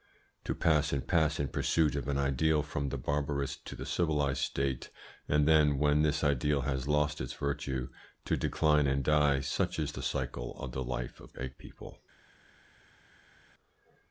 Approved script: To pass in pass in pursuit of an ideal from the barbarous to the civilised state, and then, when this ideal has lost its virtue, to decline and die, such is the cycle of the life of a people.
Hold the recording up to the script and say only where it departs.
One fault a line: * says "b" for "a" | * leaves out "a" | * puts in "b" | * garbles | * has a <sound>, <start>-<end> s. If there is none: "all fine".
all fine